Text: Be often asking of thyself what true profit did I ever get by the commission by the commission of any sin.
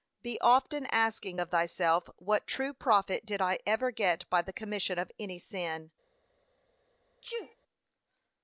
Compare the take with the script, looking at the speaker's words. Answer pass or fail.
fail